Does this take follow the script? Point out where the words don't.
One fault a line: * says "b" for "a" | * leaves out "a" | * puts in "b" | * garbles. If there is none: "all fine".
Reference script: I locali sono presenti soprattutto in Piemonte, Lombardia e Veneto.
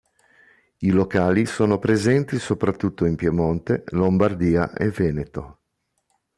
all fine